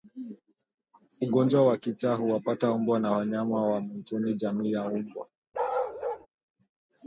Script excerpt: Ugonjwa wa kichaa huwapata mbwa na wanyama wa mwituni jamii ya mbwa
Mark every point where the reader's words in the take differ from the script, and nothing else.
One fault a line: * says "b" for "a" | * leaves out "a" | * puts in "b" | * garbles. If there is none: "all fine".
all fine